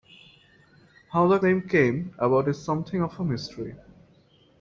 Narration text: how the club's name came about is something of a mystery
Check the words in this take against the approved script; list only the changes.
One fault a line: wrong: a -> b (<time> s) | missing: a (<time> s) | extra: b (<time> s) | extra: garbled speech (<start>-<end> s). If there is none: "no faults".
missing: club's (1.4 s)